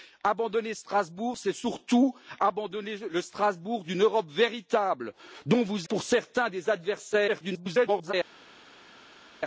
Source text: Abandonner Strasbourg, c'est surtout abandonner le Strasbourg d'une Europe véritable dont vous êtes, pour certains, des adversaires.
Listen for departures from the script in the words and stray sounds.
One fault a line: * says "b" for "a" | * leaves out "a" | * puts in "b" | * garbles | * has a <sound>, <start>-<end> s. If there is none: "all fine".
* leaves out "êtes"
* garbles